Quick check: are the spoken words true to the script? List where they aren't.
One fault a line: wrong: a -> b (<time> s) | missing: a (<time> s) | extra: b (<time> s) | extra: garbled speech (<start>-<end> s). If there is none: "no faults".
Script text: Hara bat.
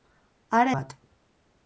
no faults